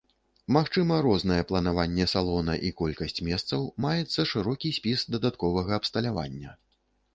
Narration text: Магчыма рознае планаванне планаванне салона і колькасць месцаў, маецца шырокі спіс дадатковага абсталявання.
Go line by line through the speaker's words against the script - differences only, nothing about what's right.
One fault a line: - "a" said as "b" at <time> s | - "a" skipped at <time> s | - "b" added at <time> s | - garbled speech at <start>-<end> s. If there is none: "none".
- "планаванне" skipped at 2.1 s